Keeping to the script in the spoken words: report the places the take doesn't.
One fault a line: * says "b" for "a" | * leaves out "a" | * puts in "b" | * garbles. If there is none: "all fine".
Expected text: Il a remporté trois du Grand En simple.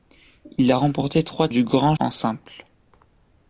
all fine